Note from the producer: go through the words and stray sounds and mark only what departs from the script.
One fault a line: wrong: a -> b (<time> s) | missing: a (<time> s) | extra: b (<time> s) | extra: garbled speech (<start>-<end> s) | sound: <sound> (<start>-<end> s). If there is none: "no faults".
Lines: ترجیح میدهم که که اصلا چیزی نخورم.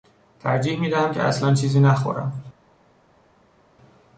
missing: که (1.2 s)